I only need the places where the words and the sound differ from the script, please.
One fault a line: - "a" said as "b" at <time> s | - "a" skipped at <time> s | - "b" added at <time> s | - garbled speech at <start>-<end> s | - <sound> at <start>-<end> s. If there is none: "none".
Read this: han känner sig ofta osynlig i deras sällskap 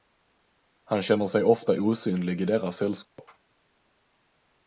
- dropout at 3.0-3.2 s